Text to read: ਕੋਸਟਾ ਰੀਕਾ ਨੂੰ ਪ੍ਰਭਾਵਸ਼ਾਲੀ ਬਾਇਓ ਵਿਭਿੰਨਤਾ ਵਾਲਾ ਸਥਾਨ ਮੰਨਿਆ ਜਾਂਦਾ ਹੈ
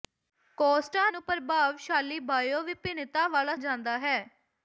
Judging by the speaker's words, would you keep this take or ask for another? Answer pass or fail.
fail